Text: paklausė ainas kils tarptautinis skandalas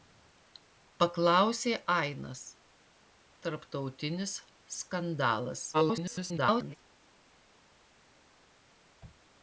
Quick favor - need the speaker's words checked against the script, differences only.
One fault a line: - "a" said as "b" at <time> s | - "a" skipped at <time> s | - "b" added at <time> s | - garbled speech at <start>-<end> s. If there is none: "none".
- "kils" skipped at 2.4 s
- garbled speech at 5.7-6.8 s